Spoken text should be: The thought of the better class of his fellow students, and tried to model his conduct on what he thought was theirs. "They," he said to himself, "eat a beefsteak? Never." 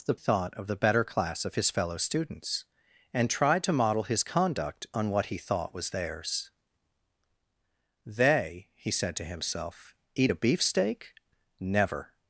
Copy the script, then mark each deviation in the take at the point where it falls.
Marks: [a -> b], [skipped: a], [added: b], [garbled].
The thought of the better class of his fellow students, and tried to model his conduct on what he thought was theirs. "They," he said to himself, "eat a beefsteak? Never."